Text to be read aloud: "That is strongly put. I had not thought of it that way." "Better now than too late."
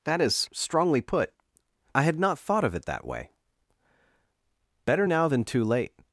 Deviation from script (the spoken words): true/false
false